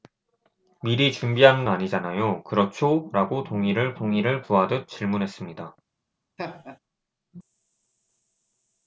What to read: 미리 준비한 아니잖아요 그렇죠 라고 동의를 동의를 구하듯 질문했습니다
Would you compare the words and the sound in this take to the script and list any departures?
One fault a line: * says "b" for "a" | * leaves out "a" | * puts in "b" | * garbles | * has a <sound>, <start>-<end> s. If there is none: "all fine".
* has a laugh, 6.4-6.8 s